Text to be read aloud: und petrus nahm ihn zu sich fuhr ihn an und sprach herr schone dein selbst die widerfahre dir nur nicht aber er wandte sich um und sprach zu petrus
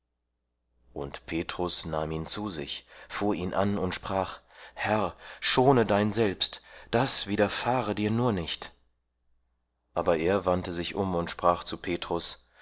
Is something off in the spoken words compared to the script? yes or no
yes